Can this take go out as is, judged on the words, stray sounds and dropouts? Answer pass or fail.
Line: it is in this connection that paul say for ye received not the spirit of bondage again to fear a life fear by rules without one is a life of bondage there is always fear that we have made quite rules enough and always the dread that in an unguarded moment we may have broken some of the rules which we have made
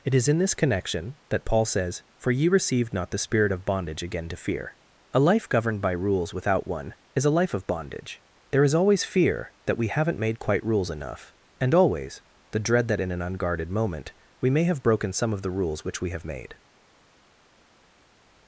fail